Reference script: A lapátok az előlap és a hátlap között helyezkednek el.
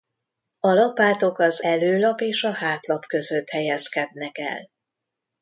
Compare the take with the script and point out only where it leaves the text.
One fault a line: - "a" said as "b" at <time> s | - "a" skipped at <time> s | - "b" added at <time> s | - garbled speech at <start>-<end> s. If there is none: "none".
none